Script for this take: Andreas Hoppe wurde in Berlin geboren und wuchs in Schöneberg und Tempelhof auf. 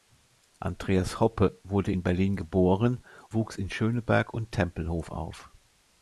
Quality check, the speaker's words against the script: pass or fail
fail